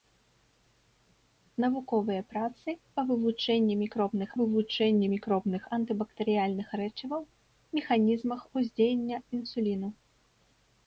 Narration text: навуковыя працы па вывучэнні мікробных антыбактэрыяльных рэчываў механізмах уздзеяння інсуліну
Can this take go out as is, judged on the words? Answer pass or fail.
fail